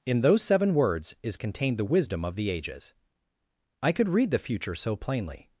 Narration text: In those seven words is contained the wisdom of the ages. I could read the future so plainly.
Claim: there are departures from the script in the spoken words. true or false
false